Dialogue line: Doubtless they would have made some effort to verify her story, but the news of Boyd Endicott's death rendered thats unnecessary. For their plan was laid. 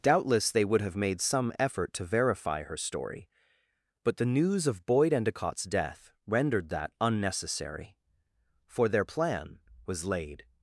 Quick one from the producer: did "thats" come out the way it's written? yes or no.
no